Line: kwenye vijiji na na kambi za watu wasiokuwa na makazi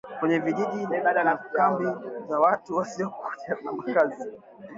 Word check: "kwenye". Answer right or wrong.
right